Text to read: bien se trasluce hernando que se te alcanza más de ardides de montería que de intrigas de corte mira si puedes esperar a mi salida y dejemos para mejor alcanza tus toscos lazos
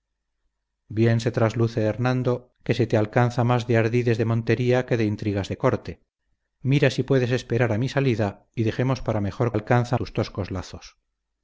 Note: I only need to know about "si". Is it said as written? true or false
true